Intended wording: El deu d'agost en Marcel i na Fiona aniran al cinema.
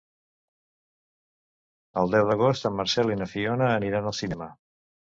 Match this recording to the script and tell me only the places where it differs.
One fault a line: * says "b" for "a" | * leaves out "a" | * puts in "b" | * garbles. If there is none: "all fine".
all fine